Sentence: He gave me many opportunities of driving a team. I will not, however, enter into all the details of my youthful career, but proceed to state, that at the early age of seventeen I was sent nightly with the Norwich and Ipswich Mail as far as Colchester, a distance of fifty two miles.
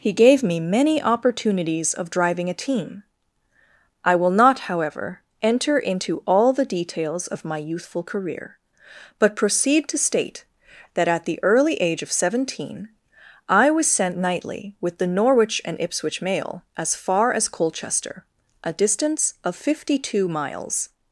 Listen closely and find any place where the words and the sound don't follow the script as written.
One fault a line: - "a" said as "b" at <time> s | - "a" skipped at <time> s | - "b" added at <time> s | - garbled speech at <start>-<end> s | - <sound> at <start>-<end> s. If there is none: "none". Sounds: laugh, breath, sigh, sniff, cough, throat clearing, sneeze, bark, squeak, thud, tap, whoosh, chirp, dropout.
none